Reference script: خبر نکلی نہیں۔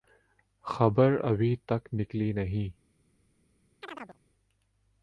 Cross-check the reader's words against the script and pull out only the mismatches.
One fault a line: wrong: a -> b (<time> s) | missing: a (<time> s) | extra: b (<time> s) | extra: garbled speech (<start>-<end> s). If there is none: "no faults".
extra: ابھی تک (1.2 s)